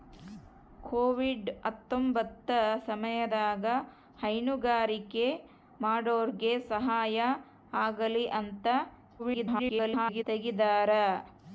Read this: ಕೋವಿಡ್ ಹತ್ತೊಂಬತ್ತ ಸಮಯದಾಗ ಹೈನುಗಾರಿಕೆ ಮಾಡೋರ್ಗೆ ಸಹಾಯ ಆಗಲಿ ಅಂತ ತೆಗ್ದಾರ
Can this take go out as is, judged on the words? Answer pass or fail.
fail